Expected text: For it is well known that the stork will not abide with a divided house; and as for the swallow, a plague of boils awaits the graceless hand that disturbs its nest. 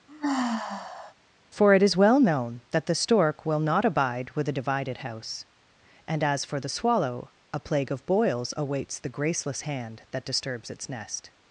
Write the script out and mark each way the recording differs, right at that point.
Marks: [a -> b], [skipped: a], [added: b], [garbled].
For it is well known that the stork will not abide with a divided house; and as for the swallow, a plague of boils awaits the graceless hand that disturbs its nest.